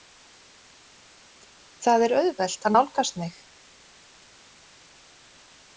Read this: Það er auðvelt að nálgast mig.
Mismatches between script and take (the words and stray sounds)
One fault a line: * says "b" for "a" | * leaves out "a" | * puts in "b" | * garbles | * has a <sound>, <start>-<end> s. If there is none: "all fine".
all fine